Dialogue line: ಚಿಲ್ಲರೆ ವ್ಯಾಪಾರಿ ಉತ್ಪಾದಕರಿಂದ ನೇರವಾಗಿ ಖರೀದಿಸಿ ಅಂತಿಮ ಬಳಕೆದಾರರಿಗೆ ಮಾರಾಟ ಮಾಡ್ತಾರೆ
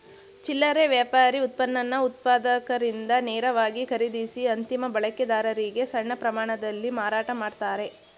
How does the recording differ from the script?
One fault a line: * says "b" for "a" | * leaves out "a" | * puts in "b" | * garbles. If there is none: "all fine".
* puts in "ಉತ್ಪನ್ನನ"
* puts in "ಸಣ್ಣ ಪ್ರಮಾಣದಲ್ಲಿ"